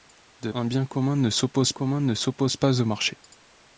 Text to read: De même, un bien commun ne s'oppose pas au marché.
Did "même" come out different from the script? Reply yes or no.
yes